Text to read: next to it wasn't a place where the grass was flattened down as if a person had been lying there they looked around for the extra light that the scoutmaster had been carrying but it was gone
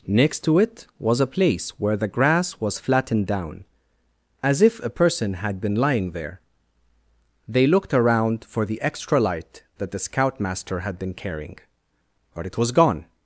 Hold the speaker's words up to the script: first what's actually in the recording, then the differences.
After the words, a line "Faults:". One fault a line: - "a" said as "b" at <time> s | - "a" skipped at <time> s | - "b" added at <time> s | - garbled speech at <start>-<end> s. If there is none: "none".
next to it was a place where the grass was flattened down as if a person had been lying there they looked around for the extra light that the scoutmaster had been carrying but it was gone
Faults:
- "wasn't" said as "was" at 1.0 s